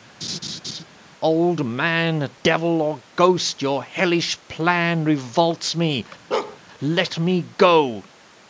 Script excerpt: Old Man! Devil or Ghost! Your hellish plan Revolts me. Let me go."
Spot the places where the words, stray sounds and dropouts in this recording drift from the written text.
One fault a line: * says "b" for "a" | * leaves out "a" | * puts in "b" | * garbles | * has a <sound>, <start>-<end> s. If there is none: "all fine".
* has a laugh, 0.2-0.8 s
* has a bark, 6.3-6.6 s